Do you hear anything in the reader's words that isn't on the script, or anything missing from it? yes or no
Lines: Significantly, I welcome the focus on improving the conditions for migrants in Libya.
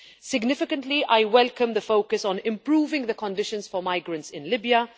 no